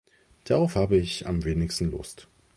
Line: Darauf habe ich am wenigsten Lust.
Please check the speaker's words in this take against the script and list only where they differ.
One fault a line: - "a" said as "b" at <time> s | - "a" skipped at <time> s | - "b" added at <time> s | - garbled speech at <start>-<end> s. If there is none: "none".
none